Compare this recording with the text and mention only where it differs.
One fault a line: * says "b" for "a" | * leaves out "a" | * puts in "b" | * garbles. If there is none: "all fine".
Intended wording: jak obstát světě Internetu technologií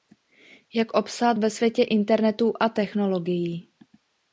* puts in "ve"
* puts in "a"